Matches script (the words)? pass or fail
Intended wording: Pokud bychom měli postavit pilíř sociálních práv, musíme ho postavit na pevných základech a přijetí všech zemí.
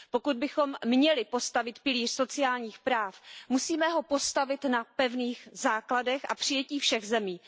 pass